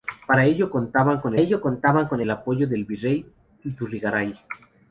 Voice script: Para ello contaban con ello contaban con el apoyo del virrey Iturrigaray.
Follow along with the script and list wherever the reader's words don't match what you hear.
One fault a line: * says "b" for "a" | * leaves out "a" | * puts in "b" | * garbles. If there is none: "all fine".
all fine